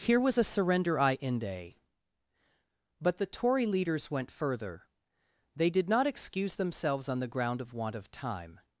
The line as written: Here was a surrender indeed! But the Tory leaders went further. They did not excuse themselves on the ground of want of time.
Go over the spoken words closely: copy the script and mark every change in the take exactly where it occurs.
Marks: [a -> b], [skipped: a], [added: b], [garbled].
Here was a surrender [indeed! -> inde] But the Tory leaders went further. They did not excuse themselves on the ground of want of time.